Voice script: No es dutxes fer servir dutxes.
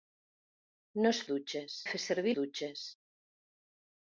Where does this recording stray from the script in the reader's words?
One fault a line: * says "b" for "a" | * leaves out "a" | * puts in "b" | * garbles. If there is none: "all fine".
all fine